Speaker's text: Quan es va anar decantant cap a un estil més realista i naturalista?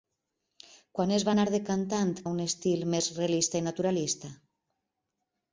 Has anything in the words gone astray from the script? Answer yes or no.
yes